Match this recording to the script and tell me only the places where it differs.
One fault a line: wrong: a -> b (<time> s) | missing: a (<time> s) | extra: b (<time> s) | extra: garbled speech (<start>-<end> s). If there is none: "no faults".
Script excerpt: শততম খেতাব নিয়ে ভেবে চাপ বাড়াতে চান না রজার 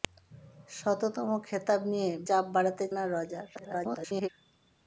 missing: ভেবে (2.1 s)
missing: চান (2.8 s)
extra: garbled speech (3.5-4.3 s)